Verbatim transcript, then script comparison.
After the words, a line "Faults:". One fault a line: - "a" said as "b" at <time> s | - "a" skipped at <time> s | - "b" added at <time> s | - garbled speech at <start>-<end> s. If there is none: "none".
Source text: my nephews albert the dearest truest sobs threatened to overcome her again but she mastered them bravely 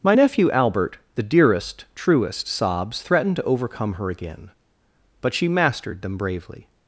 my nephew albert the dearest truest sobs threatened to overcome her again but she mastered them bravely
Faults:
- "nephews" said as "nephew" at 0.1 s